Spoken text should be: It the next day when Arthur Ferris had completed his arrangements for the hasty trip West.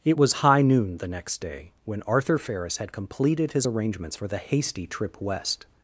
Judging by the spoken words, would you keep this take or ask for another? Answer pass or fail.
fail